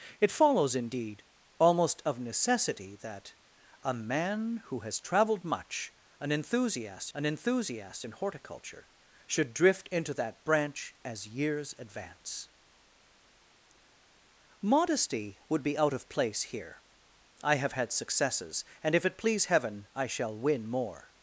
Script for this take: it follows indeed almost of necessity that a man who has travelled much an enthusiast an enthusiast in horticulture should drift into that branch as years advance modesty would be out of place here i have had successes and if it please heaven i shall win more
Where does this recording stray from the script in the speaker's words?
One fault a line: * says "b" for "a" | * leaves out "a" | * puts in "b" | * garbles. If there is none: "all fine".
all fine